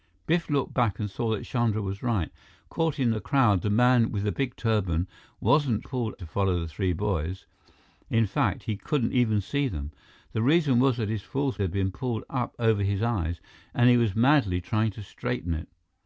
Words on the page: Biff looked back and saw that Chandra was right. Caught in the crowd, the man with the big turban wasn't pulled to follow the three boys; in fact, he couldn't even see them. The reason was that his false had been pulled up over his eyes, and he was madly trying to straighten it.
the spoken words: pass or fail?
pass